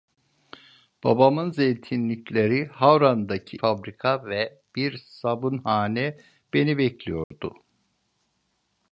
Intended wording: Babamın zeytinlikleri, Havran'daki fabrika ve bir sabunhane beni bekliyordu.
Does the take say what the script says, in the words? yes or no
yes